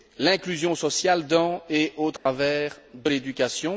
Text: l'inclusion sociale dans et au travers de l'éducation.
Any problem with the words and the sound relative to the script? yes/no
yes